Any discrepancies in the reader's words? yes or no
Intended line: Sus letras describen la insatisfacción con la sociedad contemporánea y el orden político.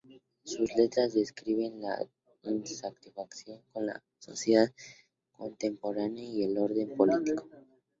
no